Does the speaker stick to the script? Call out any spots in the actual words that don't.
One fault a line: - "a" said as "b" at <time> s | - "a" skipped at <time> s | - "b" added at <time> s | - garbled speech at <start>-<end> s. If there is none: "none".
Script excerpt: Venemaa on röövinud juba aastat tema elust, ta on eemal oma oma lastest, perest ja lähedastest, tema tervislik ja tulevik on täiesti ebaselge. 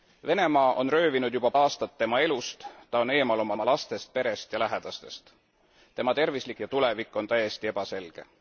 none